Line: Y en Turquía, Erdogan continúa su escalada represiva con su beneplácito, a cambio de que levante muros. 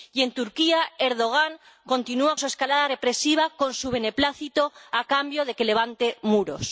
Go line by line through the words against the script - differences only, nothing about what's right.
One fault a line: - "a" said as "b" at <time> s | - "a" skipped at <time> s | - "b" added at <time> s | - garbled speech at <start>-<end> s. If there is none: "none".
none